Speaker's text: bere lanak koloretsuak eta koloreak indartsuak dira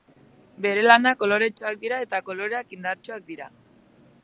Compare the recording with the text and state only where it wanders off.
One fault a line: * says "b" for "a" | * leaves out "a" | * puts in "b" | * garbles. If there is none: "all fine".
* puts in "dira"